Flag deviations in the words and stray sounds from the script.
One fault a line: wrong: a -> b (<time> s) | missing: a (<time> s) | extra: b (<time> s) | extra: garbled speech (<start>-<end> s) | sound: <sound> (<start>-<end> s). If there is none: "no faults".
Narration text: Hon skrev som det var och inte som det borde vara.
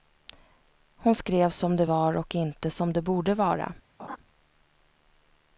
sound: laugh (4.0-4.2 s)